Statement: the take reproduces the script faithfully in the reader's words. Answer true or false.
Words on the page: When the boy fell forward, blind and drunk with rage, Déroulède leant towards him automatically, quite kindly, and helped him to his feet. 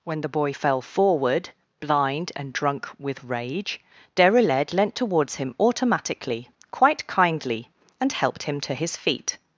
true